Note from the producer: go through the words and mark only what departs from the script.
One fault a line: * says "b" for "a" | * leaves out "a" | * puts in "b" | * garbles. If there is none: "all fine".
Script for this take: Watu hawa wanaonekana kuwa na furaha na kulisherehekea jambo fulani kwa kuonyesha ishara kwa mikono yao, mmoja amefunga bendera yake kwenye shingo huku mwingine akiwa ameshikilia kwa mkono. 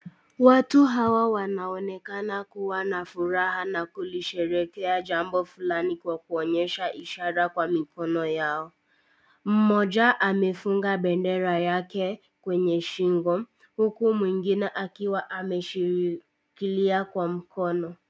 all fine